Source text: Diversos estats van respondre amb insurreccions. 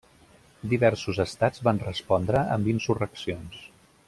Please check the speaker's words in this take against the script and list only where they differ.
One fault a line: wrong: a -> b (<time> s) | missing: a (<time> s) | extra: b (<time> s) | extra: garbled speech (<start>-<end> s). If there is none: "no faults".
no faults